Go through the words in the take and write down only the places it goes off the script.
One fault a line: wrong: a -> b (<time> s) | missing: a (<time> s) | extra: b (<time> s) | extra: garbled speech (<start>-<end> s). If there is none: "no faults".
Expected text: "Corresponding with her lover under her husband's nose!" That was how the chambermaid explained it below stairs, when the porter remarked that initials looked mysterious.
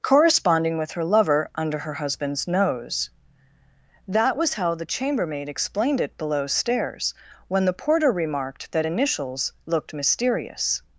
no faults